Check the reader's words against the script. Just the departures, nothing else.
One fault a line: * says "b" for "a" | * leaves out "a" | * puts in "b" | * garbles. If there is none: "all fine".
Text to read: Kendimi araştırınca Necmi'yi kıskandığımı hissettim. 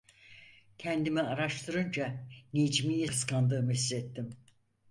all fine